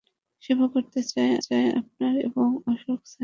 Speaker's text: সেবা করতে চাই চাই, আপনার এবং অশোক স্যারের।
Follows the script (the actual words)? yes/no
yes